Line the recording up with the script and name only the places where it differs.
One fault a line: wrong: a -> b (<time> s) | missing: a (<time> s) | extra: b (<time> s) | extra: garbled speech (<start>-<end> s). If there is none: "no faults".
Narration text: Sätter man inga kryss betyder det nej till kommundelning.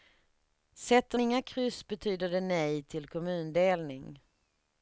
missing: man (1.2 s)